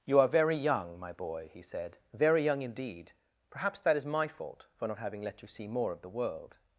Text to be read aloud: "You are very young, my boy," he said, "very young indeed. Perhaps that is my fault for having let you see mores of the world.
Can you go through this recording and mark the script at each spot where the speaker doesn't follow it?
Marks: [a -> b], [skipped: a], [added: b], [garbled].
"You are very young, my boy," he said, "very young indeed. Perhaps that is my fault for [added: not] having let you see [mores -> more] of the world.